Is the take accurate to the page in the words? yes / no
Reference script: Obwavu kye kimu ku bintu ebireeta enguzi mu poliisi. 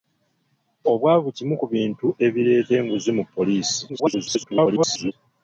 no